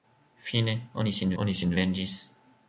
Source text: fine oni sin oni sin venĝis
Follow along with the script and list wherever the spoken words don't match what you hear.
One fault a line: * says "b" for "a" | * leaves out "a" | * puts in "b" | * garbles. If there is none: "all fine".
all fine